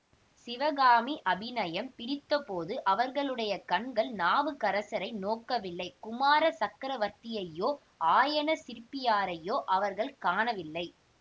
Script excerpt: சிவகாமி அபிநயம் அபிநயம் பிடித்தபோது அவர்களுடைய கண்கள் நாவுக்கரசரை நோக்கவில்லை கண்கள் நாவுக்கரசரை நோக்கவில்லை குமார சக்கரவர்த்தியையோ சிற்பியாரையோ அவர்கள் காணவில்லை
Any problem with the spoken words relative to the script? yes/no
yes